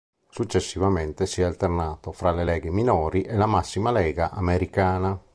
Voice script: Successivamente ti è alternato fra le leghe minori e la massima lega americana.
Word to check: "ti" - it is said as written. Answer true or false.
false